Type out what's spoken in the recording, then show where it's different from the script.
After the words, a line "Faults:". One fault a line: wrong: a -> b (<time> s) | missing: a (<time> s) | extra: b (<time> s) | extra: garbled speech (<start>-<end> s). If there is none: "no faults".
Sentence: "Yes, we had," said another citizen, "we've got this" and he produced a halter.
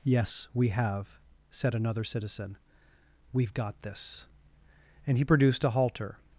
"Yes, we have," said another citizen, "we've got this" and he produced a halter.
Faults:
wrong: had -> have (0.7 s)